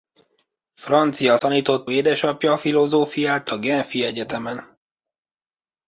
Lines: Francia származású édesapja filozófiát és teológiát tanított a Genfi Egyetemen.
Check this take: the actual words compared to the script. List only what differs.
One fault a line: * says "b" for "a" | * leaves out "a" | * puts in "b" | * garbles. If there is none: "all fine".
* says "tanított" for "származású"
* leaves out "és teológiát tanított"